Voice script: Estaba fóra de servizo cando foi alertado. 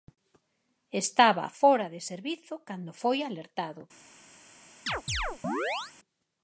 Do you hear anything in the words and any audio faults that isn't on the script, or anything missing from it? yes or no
yes